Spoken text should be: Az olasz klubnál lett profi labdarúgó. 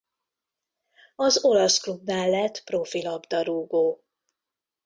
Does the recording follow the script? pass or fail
pass